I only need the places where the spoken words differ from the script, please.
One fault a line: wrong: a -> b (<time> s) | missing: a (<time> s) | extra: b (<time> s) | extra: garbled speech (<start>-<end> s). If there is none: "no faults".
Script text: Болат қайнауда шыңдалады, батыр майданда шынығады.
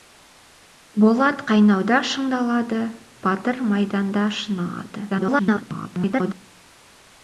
extra: garbled speech (5.1-6.3 s)